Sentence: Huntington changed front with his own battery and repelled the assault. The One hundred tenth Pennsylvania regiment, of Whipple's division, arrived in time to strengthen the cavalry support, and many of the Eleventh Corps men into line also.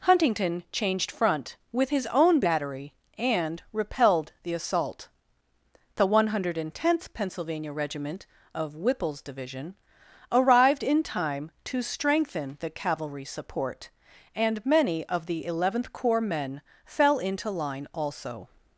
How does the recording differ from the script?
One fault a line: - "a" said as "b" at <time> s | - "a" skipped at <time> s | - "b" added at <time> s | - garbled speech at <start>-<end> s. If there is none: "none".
- "fell" added at 16.8 s